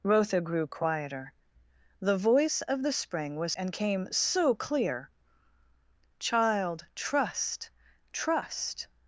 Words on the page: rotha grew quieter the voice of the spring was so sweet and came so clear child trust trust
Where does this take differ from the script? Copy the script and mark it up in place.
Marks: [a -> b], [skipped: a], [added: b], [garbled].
rotha grew quieter the voice of the spring was [skipped: so sweet] and came so clear child trust trust